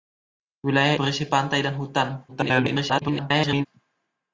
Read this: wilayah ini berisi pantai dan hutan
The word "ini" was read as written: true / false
false